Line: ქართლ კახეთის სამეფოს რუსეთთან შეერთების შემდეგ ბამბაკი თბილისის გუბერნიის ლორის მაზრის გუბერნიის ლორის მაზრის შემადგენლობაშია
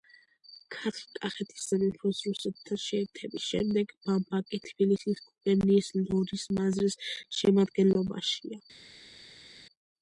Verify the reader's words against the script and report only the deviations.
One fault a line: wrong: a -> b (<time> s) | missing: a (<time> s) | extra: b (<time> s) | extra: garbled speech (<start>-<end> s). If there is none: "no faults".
missing: გუბერნიის ლორის მაზრის (7.0 s)